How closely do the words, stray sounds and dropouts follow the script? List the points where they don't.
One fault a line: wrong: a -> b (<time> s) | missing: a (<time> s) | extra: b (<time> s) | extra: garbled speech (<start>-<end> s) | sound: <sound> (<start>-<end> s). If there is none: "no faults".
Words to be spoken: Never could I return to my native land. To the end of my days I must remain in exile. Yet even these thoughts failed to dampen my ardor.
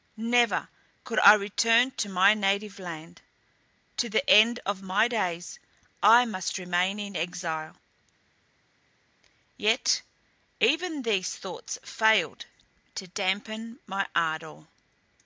no faults